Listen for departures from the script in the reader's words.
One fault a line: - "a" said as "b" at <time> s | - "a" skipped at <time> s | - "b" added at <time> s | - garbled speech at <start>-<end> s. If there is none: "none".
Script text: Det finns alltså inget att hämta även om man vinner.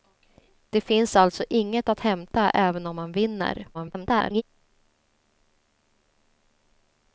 - garbled speech at 3.7-4.4 s